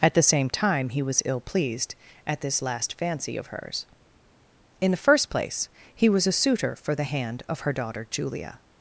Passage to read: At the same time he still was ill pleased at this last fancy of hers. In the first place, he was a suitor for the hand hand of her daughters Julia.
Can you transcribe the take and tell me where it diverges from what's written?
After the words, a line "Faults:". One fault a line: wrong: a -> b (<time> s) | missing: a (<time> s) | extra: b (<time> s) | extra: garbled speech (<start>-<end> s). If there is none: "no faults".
At the same time he was ill pleased at this last fancy of hers. In the first place, he was a suitor for the hand of her daughter Julia.
Faults:
missing: still (1.0 s)
missing: hand (7.4 s)
wrong: daughters -> daughter (7.7 s)